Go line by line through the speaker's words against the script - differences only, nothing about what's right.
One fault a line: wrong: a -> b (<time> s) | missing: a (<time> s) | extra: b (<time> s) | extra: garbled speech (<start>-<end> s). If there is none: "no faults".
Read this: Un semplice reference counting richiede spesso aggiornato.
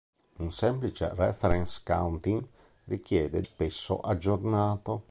no faults